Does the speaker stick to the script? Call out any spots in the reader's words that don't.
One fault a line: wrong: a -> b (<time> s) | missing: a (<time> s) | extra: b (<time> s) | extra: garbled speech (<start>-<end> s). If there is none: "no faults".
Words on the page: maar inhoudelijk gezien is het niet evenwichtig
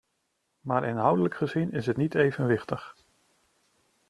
no faults